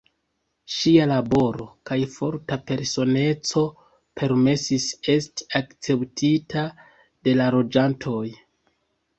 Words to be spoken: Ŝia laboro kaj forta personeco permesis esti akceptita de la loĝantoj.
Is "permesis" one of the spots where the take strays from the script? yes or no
no